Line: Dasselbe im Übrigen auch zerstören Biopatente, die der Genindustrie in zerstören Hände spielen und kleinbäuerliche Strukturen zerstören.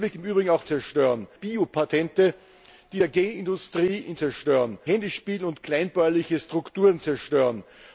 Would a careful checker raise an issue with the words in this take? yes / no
no